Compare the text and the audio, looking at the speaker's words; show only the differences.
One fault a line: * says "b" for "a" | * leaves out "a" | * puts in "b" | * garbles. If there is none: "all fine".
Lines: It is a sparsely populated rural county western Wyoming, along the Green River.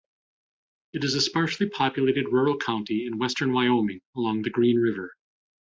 * puts in "in"